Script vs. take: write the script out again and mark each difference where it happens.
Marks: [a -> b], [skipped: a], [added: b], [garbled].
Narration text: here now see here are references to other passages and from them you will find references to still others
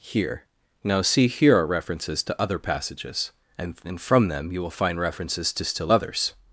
here now see here are references to other passages and [added: and] from them you will find references to still others